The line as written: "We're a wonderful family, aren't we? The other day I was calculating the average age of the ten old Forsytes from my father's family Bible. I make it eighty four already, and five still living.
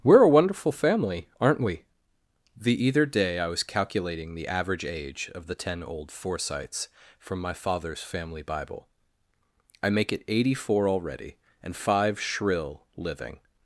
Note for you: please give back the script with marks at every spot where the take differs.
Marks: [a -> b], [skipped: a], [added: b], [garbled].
"We're a wonderful family, aren't we? The [other -> either] day I was calculating the average age of the ten old Forsytes from my father's family Bible. I make it eighty four already, and five [still -> shrill] living.